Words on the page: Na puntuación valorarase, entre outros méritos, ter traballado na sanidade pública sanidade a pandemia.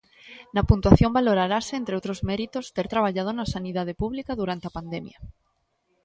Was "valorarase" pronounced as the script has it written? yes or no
yes